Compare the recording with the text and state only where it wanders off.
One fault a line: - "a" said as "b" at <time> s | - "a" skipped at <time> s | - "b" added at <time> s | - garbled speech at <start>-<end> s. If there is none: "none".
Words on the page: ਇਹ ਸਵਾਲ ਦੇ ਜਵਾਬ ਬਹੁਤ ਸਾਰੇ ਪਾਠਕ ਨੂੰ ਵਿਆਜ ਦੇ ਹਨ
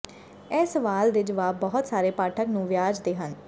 none